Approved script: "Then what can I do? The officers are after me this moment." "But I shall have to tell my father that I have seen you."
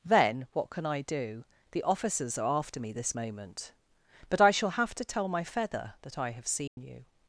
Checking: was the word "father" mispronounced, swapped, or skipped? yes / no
yes